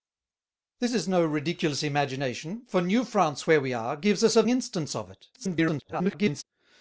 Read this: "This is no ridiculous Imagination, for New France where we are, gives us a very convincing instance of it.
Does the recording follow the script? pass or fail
fail